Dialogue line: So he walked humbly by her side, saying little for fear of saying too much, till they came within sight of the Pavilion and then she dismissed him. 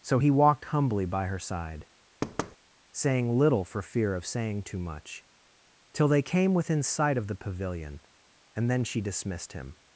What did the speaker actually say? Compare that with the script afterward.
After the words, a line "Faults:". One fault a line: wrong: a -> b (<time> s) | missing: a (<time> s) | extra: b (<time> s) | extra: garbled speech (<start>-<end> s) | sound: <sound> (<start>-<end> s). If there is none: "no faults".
So he walked humbly by her side, saying little for fear of saying too much, till they came within sight of the Pavilion and then she dismissed him.
Faults:
sound: thud (2.2-2.6 s)